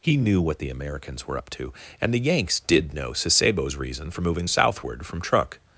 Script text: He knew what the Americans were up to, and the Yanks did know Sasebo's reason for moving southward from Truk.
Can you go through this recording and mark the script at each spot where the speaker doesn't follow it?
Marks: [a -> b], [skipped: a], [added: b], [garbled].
He knew what the Americans were up to, and the Yanks did know Sasebo's reason for moving southward from Truk.